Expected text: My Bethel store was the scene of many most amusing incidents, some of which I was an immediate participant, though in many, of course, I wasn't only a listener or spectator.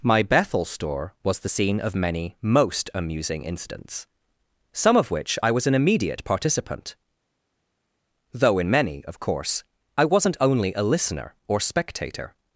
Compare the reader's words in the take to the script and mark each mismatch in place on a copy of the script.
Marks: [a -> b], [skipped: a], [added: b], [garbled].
My Bethel store was the scene of many most amusing incidents, some of which I was an immediate participant, though in many, of course, I wasn't only a listener or spectator.